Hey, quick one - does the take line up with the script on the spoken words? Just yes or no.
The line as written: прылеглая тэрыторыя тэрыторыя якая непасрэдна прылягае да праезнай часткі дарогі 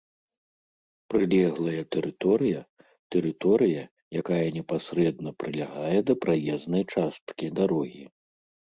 yes